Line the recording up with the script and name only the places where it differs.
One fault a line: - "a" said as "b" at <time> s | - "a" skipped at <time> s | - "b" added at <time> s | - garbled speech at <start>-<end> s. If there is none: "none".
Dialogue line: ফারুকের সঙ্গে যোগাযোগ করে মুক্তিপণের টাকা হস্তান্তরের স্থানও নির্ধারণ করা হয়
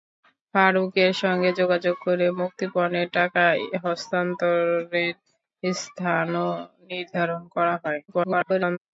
- garbled speech at 8.1-8.8 s